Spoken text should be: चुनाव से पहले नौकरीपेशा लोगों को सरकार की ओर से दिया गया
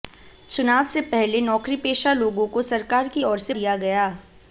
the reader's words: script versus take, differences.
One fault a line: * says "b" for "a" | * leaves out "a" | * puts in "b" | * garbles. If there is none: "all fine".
all fine